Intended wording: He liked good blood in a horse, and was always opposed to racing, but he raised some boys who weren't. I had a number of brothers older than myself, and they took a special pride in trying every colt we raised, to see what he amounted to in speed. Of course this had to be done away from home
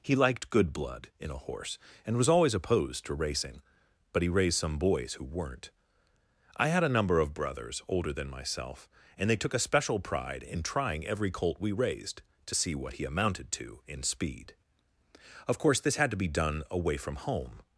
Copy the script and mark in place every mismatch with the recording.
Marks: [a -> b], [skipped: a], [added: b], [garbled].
He liked good blood in a horse, and was always opposed to racing, but he raised some boys who weren't. I had a number of brothers older than myself, and they took a special pride in trying every colt we raised, to see what he amounted to in speed. Of course this had to be done away from home